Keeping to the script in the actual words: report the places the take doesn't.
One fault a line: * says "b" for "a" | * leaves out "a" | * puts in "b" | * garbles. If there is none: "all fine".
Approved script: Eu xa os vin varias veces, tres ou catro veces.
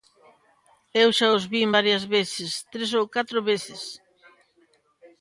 all fine